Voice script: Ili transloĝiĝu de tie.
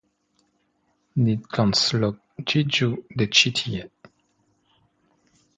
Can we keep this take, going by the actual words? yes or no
no